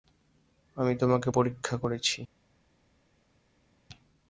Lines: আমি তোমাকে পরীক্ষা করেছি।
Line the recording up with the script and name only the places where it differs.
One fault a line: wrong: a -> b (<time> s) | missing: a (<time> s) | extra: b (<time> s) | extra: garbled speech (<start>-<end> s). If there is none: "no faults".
no faults